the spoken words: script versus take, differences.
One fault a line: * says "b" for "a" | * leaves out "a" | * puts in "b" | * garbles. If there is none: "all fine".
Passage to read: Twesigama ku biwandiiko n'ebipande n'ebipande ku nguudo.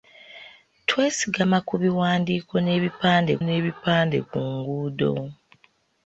all fine